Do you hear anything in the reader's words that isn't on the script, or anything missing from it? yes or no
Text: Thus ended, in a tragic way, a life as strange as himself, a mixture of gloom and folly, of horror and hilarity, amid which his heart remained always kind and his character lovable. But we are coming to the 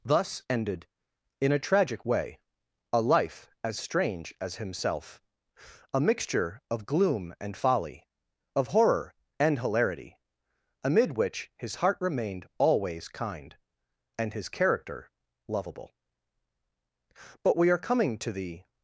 no